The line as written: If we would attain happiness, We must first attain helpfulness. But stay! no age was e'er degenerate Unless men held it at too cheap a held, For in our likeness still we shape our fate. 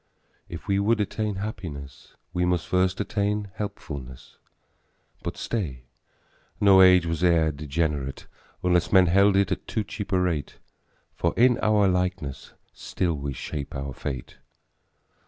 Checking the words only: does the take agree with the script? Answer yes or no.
no